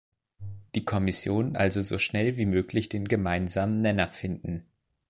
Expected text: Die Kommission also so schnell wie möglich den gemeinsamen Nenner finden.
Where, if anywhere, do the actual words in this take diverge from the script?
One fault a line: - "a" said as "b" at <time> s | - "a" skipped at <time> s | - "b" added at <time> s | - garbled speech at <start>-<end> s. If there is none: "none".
none